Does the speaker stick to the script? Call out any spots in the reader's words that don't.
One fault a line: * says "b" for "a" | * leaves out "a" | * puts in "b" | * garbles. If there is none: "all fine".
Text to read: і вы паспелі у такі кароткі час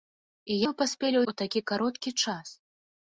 all fine